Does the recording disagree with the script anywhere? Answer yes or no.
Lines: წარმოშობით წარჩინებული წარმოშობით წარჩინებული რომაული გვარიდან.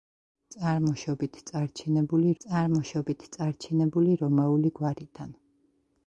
no